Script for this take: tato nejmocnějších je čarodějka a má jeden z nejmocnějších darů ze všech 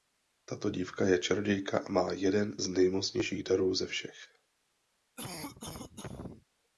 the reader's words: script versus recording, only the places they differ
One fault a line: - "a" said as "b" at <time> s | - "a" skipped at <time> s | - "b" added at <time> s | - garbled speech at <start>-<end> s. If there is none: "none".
- "nejmocnějších" said as "dívka" at 0.7 s